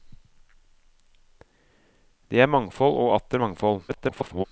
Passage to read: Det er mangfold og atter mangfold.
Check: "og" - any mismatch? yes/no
no